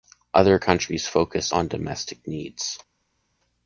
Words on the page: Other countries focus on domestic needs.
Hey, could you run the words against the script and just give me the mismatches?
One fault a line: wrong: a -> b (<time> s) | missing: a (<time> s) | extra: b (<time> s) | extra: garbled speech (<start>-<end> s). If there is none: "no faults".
no faults